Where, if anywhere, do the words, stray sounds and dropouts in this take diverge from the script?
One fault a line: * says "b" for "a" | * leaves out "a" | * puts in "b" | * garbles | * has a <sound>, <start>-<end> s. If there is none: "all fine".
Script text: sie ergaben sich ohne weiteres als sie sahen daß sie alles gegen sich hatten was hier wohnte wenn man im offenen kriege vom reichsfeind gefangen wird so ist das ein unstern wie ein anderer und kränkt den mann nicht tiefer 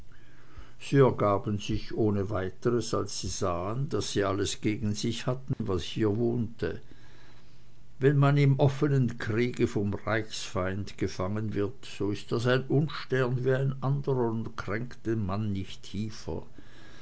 * has a dropout, 5.5-5.6 s